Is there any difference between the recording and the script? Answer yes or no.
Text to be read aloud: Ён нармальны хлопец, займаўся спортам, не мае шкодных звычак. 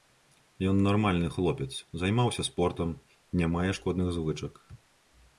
no